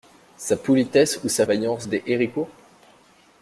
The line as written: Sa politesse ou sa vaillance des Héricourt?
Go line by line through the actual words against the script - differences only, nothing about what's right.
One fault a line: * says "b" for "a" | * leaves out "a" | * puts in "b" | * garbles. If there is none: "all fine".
all fine